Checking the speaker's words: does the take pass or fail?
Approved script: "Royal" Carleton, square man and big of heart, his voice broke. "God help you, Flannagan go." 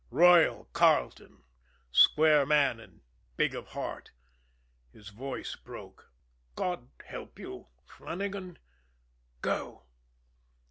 pass